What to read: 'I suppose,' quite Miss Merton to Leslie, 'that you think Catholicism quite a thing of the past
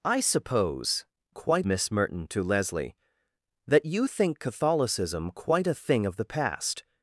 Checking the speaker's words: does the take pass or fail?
pass